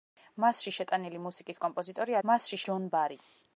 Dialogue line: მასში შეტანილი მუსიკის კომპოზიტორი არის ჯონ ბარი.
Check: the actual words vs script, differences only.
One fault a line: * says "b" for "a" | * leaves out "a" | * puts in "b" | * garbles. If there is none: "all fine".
* says "მასში" for "არის"